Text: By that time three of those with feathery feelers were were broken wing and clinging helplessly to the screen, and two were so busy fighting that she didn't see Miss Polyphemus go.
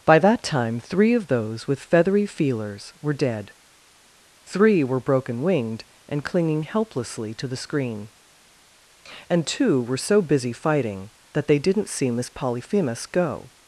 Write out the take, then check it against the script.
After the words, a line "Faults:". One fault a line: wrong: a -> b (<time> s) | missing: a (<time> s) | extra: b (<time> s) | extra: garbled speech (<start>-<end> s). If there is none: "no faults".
By that time three of those with feathery feelers were dead, three were broken winged and clinging helplessly to the screen, and two were so busy fighting that they didn't see Miss Polyphemus go.
Faults:
extra: dead three (3.1 s)
wrong: wing -> winged (5.4 s)
wrong: she -> they (11.5 s)